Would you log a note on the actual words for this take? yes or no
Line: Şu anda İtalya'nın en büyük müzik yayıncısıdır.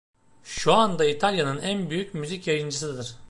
no